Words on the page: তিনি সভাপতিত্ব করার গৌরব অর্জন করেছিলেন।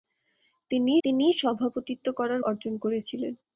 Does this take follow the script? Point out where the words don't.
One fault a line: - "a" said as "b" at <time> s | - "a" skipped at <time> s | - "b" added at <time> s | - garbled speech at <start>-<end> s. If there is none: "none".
- "তিনি" added at 1.0 s
- "গৌরব" skipped at 2.4 s